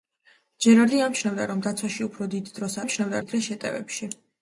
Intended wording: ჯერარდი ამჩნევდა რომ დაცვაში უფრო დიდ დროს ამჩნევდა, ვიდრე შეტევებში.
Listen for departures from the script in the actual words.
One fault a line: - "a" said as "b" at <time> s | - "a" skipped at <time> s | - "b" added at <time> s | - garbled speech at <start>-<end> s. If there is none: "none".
none